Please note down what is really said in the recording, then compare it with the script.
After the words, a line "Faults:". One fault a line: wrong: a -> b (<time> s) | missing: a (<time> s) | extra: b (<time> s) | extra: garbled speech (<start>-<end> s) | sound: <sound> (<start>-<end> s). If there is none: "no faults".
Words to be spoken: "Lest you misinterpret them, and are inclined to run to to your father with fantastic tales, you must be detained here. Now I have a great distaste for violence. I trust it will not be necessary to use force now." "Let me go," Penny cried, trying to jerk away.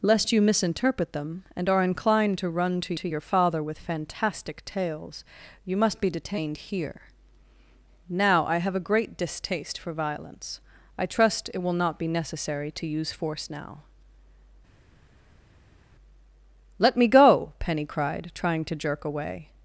"Lest you misinterpret them, and are inclined to run to to your father with fantastic tales, you must be detained here. Now I have a great distaste for violence. I trust it will not be necessary to use force now." "Let me go," Penny cried, trying to jerk away.
Faults:
no faults